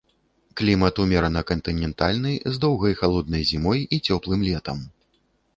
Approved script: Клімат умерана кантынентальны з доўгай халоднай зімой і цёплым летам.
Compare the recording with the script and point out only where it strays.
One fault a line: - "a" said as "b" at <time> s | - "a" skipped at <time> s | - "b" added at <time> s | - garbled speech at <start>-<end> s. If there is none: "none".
none